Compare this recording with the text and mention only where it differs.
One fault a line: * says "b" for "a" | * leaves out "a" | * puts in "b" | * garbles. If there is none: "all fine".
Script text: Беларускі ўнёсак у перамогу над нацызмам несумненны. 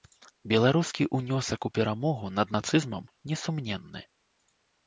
all fine